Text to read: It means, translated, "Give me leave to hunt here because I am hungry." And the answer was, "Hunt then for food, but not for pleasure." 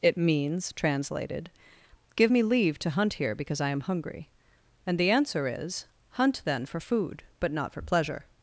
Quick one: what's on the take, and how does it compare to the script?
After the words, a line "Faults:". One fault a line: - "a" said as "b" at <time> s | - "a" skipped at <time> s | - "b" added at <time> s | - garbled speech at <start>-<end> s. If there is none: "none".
It means, translated, "Give me leave to hunt here because I am hungry." And the answer is, "Hunt then for food, but not for pleasure."
Faults:
- "was" said as "is" at 5.5 s